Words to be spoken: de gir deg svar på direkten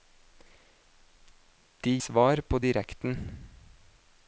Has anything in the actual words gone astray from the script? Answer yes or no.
yes